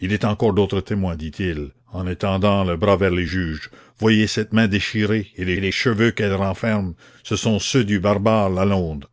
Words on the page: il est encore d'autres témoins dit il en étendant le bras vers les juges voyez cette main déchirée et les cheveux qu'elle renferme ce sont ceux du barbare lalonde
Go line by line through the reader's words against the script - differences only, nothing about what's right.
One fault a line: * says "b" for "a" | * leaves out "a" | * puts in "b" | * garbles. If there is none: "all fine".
* puts in "les"